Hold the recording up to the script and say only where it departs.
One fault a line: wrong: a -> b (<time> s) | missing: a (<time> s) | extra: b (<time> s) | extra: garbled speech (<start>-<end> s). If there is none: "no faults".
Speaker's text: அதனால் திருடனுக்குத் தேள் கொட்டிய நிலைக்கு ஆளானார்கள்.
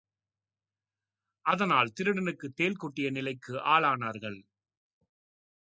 no faults